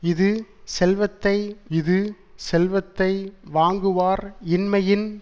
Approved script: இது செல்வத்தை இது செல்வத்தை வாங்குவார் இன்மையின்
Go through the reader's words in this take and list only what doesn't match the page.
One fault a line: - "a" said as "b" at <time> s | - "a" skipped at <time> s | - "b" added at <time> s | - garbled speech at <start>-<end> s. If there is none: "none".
none